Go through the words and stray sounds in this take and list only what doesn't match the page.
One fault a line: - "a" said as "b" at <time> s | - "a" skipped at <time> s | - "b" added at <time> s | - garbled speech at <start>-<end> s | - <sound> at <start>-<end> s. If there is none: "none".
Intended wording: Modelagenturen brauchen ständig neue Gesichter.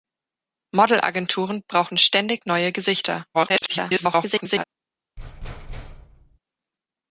- garbled speech at 3.3-4.6 s
- thud at 5.2-6.4 s